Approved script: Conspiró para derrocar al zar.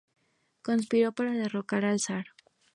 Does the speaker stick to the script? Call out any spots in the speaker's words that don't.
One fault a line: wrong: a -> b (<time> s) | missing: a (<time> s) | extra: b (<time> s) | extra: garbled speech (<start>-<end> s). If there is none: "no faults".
no faults